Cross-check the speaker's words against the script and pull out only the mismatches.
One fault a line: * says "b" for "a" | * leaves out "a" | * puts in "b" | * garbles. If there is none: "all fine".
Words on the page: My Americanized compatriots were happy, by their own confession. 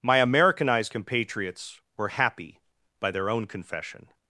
all fine